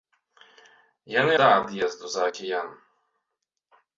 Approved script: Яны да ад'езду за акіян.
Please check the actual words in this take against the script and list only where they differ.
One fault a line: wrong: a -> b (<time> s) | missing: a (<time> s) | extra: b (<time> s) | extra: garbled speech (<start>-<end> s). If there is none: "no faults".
no faults